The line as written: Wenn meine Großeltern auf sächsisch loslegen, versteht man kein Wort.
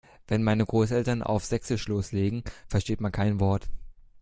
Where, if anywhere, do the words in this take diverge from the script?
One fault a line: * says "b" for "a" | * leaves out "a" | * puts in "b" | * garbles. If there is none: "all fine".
all fine